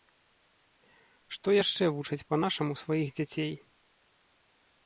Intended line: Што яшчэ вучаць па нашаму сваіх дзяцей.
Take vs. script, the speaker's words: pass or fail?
pass